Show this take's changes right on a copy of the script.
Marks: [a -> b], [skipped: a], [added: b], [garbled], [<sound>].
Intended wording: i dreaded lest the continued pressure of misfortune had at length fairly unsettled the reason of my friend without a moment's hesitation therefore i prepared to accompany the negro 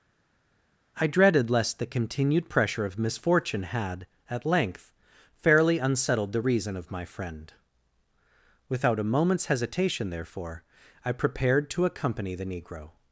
i dreaded lest the continued pressure of misfortune had at length fairly unsettled the reason of my friend without a moment's hesitation therefore i prepared to accompany the negro